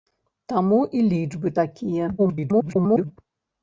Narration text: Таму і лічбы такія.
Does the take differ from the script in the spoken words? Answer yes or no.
yes